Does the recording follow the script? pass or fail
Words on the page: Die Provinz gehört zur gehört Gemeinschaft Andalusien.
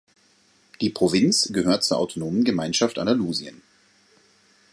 fail